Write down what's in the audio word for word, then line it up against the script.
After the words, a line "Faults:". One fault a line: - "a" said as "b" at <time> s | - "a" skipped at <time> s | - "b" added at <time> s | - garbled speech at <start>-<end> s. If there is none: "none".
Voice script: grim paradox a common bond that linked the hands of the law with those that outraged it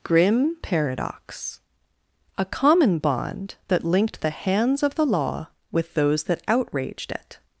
grim paradox a common bond that linked the hands of the law with those that outraged it
Faults:
none